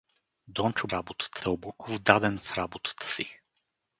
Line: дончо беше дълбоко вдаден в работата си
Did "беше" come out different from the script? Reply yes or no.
yes